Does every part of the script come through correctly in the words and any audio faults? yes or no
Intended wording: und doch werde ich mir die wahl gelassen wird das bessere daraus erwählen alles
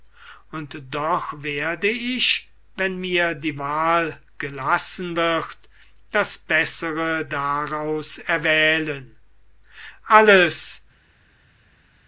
no